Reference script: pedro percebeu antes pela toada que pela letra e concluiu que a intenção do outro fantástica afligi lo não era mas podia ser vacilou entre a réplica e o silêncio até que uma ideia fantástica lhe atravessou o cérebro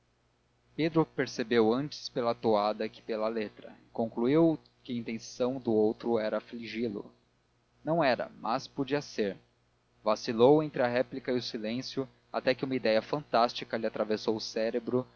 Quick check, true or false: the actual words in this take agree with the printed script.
false